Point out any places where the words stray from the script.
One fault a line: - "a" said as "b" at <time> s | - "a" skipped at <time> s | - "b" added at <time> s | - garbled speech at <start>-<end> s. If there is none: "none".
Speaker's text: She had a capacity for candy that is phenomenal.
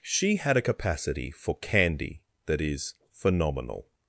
none